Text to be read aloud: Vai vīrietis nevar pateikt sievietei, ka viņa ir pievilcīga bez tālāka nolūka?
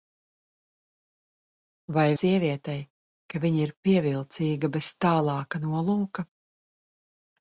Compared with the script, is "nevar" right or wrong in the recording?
wrong